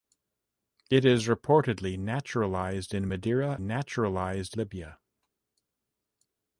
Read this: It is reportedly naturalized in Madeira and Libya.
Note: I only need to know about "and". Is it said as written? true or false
false